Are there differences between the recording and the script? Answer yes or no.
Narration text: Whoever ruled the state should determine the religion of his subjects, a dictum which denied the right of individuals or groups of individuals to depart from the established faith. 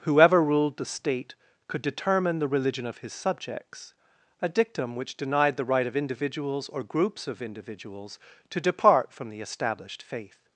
yes